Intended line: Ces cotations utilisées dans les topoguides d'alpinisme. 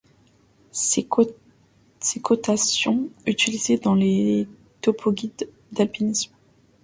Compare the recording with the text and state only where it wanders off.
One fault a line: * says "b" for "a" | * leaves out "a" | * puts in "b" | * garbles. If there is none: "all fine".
all fine